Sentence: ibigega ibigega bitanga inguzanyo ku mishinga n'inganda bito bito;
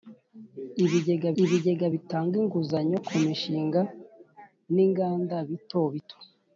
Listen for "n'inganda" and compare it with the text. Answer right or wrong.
right